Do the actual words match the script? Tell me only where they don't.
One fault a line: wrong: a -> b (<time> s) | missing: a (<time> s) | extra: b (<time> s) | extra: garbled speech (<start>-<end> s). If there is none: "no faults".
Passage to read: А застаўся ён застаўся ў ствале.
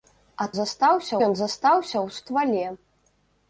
no faults